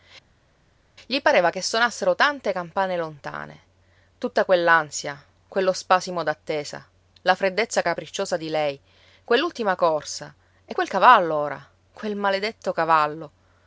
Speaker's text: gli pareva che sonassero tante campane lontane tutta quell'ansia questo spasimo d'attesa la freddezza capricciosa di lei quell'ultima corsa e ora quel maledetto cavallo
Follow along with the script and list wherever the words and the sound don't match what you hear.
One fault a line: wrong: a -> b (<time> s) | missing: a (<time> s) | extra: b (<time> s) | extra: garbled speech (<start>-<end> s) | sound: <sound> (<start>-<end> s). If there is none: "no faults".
wrong: questo -> quello (5.5 s)
extra: quel cavallo (10.7 s)